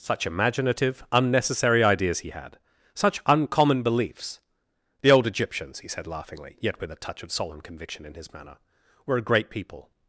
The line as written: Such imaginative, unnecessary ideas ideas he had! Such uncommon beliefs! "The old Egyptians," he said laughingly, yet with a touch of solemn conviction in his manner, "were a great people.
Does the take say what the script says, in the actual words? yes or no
no